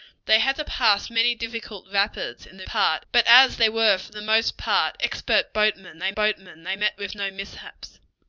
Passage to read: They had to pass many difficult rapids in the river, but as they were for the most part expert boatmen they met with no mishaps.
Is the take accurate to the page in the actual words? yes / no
no